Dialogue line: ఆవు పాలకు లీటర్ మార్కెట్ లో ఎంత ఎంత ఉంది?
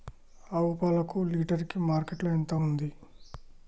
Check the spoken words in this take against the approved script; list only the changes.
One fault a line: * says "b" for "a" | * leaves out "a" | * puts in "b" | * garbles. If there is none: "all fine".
* puts in "కి"
* leaves out "ఎంత"